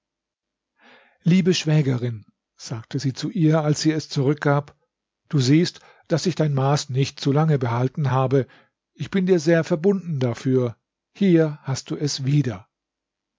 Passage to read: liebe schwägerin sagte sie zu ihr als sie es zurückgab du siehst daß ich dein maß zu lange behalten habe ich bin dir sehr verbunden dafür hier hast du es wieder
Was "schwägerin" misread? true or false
false